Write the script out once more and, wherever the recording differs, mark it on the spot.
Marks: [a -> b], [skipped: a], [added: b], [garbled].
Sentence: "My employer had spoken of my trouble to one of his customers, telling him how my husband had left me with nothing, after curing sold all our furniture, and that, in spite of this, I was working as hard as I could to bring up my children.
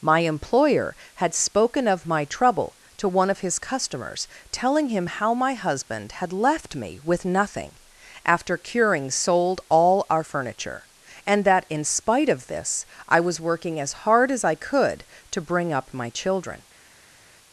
"My employer had spoken of my trouble to one of his customers, telling him how my husband had left me with nothing, after curing sold all our furniture, and that, in spite of this, I was working as hard as I could to bring up my children.